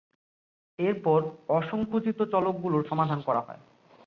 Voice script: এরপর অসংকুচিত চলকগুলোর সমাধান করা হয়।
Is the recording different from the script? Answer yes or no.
no